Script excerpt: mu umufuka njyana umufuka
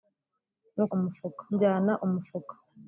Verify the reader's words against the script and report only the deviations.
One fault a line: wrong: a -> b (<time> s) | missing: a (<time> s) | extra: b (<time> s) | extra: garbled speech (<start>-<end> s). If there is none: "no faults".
no faults